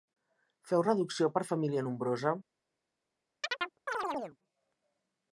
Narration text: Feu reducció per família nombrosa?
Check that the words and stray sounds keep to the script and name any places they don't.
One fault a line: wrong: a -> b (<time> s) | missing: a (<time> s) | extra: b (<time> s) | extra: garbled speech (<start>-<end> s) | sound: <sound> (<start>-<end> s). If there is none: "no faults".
sound: chirp (3.4-4.4 s)